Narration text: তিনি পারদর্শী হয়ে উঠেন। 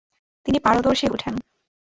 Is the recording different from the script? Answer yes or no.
yes